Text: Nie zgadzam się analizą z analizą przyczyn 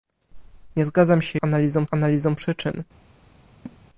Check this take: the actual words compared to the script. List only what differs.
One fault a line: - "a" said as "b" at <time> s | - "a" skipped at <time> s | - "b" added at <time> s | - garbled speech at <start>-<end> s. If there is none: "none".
none